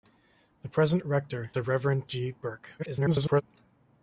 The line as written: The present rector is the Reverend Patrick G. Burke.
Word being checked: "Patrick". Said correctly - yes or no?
no